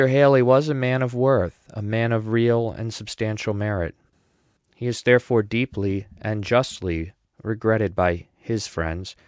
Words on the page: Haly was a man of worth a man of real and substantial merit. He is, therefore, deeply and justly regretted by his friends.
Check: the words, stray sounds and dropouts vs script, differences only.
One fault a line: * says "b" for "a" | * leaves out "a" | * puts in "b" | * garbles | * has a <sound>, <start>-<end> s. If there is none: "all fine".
all fine